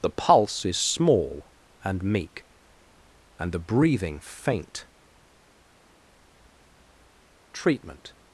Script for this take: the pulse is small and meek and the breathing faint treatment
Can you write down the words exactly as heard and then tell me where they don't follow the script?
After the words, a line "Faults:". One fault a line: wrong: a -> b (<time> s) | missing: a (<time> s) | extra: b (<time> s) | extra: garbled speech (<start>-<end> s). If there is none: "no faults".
the pulse is small and meek and the breathing faint treatment
Faults:
no faults